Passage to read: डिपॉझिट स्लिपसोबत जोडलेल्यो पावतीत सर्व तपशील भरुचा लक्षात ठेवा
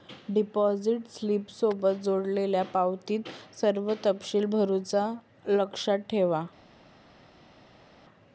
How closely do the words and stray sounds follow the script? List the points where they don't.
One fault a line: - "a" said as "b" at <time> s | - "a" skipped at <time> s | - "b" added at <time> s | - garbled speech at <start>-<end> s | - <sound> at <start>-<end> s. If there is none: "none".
none